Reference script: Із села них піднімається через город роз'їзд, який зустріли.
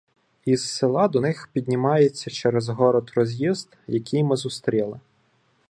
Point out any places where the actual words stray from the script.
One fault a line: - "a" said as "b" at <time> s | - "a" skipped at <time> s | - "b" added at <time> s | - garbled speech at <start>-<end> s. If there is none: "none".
- "до" added at 1.1 s
- "ми" added at 4.2 s